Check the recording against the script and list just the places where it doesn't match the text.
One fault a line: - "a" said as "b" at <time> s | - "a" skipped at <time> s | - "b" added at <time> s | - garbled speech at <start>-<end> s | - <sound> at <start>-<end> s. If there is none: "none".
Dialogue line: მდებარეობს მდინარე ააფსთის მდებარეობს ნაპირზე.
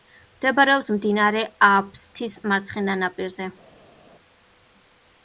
- "მდებარეობს" said as "მარცხენა" at 2.5 s